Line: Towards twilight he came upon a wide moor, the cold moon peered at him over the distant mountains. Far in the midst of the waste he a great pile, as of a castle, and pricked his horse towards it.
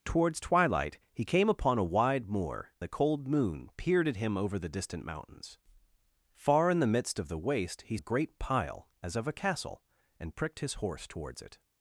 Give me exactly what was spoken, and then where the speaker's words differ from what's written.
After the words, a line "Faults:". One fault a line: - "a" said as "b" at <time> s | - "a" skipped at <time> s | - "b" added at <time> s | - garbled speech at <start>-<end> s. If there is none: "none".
Towards twilight he came upon a wide moor, the cold moon peered at him over the distant mountains. Far in the midst of the waste he a great pile, as of a castle, and pricked his horse towards it.
Faults:
none